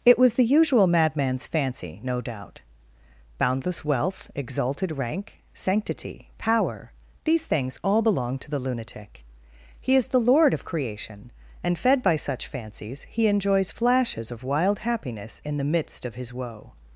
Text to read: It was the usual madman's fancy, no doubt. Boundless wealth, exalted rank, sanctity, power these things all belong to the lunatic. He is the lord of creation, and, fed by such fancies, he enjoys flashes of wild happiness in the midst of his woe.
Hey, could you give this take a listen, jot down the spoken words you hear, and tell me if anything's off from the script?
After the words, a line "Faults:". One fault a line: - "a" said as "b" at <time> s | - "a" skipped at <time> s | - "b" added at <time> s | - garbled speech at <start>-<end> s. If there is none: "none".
It was the usual madman's fancy, no doubt. Boundless wealth, exalted rank, sanctity, power these things all belong to the lunatic. He is the lord of creation, and, fed by such fancies, he enjoys flashes of wild happiness in the midst of his woe.
Faults:
none